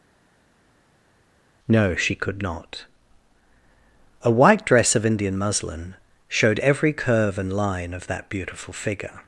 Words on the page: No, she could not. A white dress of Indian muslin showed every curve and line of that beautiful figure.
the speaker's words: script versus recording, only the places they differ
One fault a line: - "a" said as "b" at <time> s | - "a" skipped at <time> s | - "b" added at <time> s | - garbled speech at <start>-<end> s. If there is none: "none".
none